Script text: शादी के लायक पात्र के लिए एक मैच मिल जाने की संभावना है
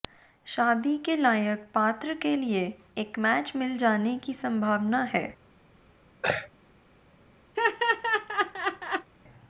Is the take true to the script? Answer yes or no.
yes